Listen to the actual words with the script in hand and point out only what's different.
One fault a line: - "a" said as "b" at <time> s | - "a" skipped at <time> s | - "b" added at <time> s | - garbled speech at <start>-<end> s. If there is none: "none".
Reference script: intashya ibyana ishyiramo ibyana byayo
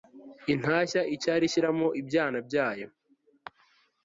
- "ibyana" said as "icyari" at 1.1 s